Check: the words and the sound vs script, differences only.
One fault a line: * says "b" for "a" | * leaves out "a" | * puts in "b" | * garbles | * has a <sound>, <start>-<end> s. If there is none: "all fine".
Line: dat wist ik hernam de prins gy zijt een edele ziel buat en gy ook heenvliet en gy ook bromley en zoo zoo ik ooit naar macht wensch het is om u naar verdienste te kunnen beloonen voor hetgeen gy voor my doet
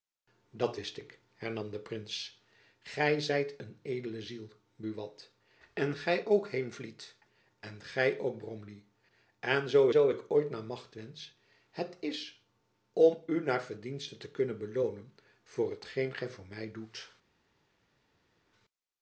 all fine